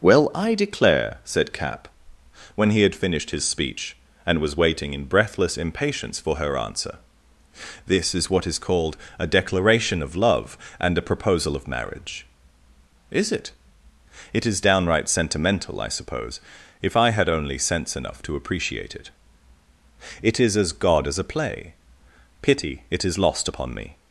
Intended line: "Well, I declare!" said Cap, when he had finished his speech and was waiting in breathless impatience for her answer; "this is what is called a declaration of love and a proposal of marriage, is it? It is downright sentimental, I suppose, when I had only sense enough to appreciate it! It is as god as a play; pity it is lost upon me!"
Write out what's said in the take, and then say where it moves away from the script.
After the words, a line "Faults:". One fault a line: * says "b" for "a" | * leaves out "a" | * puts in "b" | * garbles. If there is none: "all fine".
"Well, I declare!" said Cap, when he had finished his speech and was waiting in breathless impatience for her answer; "this is what is called a declaration of love and a proposal of marriage, is it? It is downright sentimental, I suppose, if I had only sense enough to appreciate it! It is as god as a play; pity it is lost upon me!"
Faults:
* says "if" for "when"